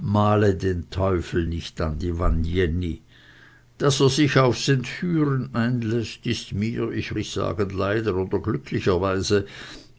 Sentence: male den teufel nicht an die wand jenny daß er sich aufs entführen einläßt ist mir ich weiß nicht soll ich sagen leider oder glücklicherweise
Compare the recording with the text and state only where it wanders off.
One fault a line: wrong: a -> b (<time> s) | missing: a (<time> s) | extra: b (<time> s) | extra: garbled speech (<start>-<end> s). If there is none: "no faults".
missing: weiß nicht soll (7.1 s)